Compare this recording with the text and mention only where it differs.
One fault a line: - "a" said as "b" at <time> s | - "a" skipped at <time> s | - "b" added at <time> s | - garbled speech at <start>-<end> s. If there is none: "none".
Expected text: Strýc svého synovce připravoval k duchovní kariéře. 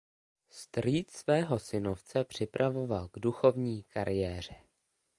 none